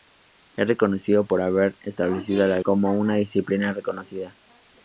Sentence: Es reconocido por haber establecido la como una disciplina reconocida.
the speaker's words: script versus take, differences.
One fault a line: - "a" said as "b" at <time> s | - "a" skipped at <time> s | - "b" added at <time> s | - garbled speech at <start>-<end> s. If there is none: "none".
none